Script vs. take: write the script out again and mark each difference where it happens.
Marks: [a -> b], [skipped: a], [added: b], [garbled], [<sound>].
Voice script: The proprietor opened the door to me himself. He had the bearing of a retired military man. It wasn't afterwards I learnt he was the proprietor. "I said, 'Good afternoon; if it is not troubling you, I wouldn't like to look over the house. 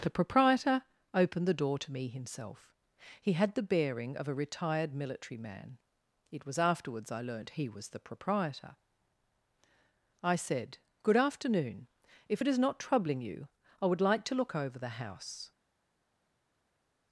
The proprietor opened the door to me himself. He had the bearing of a retired military man. It [wasn't -> was] afterwards I learnt he was the proprietor. "I said, 'Good afternoon; if it is not troubling you, I [wouldn't -> would] like to look over the house.